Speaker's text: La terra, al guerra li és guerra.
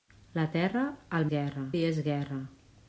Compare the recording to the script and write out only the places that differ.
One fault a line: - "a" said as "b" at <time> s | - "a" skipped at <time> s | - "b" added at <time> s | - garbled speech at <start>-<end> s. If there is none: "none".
none